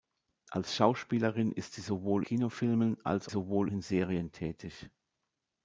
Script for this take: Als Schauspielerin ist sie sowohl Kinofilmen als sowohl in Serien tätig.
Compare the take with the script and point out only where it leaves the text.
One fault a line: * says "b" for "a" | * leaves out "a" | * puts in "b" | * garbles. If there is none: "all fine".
all fine